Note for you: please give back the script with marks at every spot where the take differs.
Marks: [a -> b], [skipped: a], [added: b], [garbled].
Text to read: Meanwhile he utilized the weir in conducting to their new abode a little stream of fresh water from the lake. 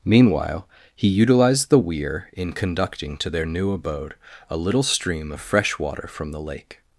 Meanwhile he utilized the weir in conducting to their new abode a little stream of fresh water from the lake.